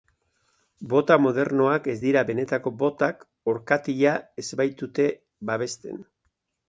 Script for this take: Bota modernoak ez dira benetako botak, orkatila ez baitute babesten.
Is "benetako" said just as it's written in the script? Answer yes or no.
yes